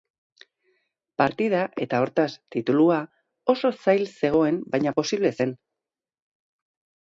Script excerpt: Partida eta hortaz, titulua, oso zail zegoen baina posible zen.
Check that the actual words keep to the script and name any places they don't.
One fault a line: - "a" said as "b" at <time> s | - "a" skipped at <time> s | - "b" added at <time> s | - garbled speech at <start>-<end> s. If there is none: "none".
none